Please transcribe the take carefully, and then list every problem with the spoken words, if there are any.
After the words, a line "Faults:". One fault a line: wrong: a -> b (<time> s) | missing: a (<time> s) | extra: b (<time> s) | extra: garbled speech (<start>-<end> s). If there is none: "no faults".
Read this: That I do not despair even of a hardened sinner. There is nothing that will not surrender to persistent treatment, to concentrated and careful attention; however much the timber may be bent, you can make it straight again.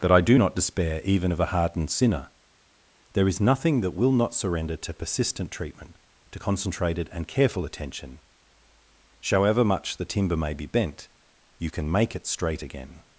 That I do not despair even of a hardened sinner. There is nothing that will not surrender to persistent treatment, to concentrated and careful attention; however much the timber may be bent, you can make it straight again.
Faults:
no faults